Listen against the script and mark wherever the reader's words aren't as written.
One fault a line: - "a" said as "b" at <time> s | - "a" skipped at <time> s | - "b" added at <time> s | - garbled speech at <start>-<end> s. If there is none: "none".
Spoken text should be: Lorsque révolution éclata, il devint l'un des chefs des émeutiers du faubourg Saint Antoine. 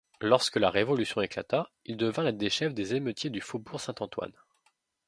- "la" added at 0.6 s